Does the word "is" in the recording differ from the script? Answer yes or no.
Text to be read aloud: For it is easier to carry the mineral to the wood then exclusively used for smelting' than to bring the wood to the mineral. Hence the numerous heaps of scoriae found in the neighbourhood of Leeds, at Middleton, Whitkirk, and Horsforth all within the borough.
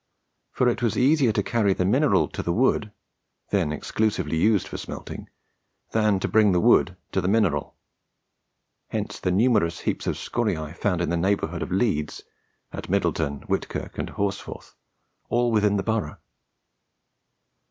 yes